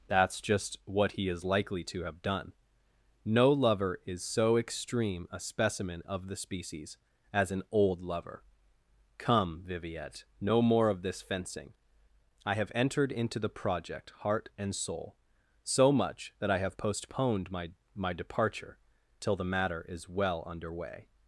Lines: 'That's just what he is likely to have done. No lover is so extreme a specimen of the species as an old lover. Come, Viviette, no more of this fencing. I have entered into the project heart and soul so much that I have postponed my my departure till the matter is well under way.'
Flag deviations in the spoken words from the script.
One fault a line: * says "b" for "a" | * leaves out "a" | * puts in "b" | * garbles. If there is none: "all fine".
all fine